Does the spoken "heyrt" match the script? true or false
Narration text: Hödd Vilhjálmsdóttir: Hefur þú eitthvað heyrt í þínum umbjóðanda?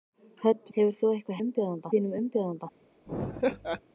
false